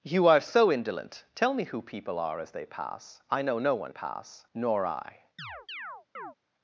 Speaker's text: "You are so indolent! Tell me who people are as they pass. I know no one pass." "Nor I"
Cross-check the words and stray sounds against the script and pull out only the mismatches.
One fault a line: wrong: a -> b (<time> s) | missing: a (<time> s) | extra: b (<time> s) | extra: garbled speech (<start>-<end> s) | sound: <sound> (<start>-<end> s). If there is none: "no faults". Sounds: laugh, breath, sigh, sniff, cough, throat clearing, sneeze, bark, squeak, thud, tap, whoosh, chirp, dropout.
sound: chirp (5.4-6.4 s)